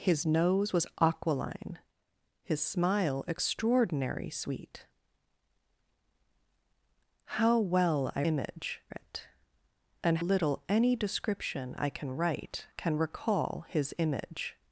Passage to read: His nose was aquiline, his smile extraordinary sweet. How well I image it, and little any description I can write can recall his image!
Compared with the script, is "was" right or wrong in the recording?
right